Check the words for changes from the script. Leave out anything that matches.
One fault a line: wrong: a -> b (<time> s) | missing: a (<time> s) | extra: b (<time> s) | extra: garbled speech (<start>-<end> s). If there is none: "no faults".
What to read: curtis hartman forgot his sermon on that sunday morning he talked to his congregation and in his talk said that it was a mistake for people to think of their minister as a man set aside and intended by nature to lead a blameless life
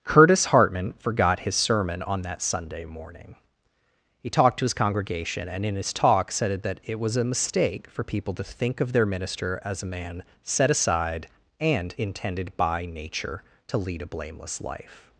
no faults